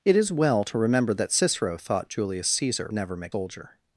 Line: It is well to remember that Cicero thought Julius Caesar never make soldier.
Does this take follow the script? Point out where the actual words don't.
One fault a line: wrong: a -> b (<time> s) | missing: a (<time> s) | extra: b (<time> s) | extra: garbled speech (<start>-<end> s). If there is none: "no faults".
no faults